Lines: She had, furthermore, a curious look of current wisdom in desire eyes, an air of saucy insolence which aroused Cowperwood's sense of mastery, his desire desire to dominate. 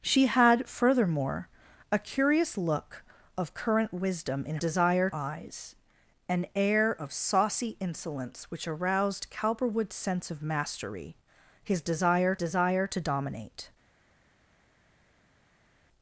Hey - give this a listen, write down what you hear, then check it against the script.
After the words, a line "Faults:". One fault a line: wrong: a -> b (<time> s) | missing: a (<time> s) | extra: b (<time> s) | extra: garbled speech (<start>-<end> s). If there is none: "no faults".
She had, furthermore, a curious look of current wisdom in desire eyes, an air of saucy insolence which aroused Cowperwood's sense of mastery, his desire desire to dominate.
Faults:
no faults